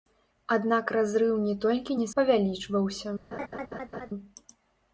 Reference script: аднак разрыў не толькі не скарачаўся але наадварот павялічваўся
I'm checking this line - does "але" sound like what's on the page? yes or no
no